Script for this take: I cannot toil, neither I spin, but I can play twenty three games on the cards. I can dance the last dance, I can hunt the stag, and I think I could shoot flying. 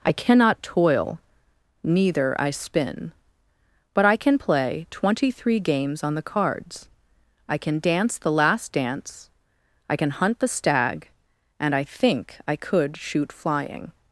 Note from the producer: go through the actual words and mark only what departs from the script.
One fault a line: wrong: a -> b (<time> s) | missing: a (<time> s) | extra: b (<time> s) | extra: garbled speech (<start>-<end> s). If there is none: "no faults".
no faults